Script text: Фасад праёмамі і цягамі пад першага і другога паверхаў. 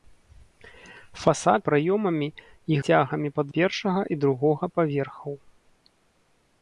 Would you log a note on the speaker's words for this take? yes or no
no